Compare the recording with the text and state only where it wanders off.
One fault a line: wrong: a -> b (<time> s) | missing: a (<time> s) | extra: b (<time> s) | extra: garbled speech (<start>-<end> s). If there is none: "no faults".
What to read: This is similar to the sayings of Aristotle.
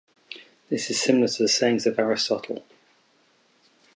no faults